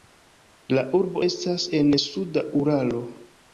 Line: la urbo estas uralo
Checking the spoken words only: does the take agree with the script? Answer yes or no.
no